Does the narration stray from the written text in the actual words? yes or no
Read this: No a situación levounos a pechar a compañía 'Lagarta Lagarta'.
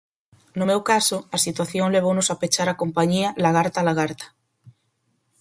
yes